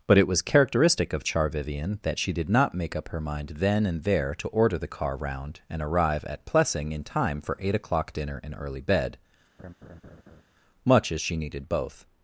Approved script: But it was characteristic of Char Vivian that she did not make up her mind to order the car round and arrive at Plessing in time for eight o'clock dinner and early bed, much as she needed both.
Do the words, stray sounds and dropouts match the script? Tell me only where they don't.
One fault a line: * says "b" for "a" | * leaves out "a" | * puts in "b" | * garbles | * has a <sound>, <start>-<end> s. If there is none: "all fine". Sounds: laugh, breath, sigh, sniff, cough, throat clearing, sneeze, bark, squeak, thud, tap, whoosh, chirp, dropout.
* puts in "then and there"
* has a laugh, 9.6-10.4 s